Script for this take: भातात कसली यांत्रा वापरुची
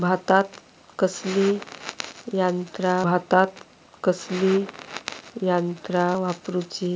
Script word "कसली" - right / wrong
right